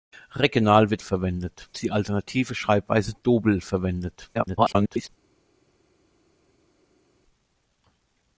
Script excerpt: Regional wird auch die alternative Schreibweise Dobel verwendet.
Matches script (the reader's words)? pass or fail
fail